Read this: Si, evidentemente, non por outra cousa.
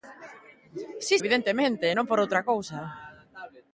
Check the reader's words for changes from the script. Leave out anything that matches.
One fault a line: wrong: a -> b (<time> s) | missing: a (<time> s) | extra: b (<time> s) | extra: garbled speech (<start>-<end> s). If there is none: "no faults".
no faults